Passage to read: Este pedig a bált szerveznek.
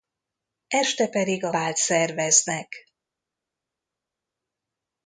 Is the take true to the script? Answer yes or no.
yes